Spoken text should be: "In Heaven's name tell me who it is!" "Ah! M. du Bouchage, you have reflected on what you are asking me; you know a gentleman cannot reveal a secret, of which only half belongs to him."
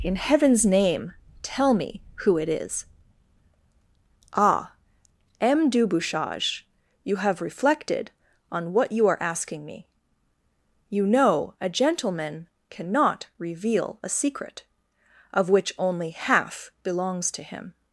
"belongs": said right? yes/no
yes